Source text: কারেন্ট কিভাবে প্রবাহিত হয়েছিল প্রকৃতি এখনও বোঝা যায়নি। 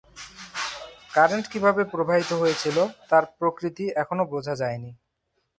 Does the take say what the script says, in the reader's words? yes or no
no